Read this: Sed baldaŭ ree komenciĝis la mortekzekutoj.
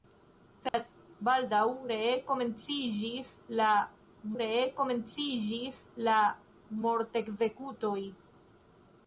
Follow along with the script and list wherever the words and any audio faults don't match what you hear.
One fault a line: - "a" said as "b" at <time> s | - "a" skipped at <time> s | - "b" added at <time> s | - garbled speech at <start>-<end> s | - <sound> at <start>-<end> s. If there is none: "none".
- dropout at 0.7-0.7 s
- "ree komenciĝis la" added at 4.4 s